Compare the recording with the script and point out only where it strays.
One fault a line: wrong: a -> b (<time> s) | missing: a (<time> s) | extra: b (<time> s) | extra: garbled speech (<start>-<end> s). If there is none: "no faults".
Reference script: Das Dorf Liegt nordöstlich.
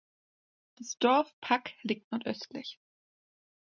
extra: Pack (1.4 s)